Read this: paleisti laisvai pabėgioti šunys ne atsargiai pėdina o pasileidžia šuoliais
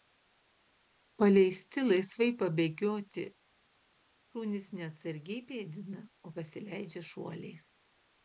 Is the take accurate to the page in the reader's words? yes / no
yes